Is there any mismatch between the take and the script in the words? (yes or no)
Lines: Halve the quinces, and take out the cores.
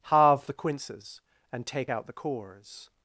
no